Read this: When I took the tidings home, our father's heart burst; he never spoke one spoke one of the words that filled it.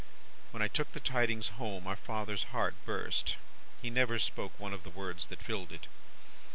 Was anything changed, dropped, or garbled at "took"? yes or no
no